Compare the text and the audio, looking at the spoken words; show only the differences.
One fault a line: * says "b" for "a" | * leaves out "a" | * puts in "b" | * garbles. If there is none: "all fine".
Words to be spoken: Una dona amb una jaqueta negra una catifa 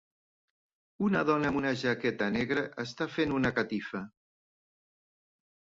* puts in "està fent"